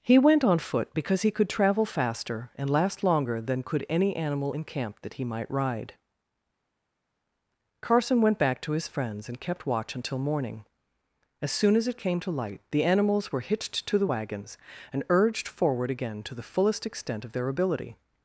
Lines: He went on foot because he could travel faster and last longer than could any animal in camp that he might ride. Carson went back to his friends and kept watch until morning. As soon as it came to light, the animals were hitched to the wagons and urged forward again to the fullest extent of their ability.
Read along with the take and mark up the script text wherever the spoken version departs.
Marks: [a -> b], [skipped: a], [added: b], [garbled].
He went on foot because he could travel faster and last longer than could any animal in camp that he might ride. Carson went back to his friends and kept watch until morning. As soon as it came to light, the animals were hitched to the wagons and urged forward again to the fullest extent of their ability.